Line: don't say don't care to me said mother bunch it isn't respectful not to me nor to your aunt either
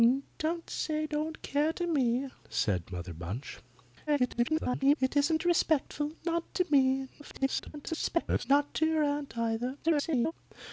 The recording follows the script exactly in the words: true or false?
false